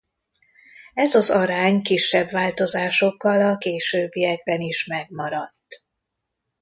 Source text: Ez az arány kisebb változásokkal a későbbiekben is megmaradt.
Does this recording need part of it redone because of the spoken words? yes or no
no